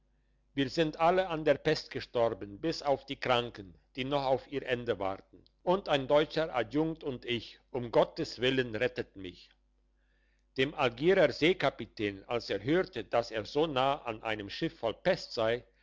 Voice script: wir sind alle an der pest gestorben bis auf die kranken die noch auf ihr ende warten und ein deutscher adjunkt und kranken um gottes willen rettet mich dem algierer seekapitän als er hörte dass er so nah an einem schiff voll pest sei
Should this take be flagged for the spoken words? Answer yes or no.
yes